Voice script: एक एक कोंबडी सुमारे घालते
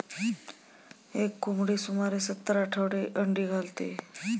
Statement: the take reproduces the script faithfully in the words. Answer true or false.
false